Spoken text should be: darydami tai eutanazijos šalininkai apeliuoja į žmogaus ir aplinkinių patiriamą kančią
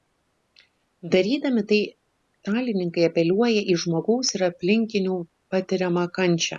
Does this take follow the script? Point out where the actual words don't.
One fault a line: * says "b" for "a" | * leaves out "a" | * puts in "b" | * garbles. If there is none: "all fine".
* leaves out "eutanazijos"